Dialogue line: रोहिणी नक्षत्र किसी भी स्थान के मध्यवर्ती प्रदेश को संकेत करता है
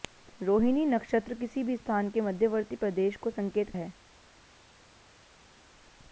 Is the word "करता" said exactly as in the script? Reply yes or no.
no